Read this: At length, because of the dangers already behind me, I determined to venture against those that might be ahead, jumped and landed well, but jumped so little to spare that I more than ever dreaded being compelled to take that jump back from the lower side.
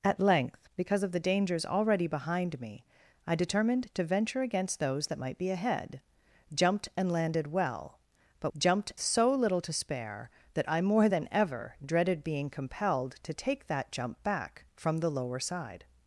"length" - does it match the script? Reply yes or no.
yes